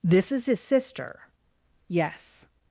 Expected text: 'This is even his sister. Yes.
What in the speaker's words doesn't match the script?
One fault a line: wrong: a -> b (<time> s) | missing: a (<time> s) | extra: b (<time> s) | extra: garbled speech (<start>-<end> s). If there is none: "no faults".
missing: even (0.5 s)